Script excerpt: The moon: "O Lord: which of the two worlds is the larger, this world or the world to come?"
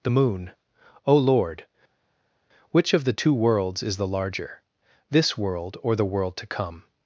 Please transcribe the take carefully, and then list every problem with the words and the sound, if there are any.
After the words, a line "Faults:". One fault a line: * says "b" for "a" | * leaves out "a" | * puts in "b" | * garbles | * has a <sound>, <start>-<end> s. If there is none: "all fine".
The moon: "O Lord: which of the two worlds is the larger, this world or the world to come?"
Faults:
all fine